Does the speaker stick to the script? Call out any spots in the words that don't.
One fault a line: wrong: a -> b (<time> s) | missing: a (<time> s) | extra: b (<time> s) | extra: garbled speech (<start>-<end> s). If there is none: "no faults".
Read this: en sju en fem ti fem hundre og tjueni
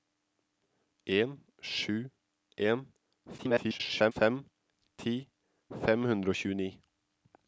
extra: garbled speech (3.4-4.1 s)